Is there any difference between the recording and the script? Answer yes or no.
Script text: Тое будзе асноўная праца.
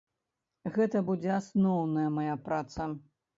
yes